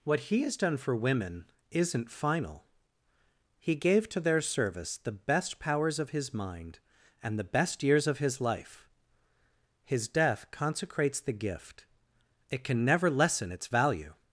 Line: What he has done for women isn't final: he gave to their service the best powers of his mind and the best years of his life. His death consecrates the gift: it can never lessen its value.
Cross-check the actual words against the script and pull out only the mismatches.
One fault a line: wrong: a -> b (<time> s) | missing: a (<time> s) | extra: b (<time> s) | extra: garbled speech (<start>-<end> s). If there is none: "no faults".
no faults